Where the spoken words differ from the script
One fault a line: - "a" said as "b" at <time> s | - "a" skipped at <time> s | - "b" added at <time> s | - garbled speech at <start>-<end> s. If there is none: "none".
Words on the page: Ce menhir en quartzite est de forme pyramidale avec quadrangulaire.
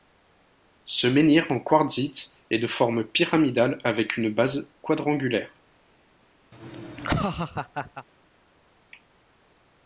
- "une base" added at 4.2 s